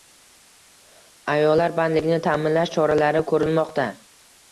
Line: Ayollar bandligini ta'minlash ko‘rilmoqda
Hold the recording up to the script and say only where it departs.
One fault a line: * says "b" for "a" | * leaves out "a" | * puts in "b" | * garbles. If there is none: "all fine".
* puts in "choralari"